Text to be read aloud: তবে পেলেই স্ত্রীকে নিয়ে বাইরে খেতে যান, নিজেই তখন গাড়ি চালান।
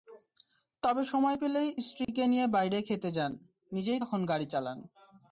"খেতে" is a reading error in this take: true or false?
false